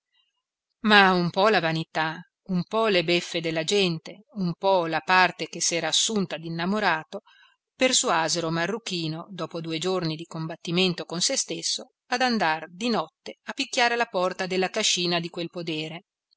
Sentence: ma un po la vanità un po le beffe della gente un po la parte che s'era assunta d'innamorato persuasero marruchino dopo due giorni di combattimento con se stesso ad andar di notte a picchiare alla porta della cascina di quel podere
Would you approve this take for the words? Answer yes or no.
yes